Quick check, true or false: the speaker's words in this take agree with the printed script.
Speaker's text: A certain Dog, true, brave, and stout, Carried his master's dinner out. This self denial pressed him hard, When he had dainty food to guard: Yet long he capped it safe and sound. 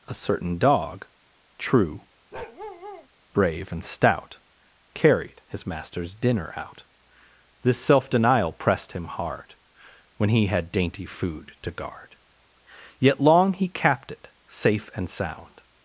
true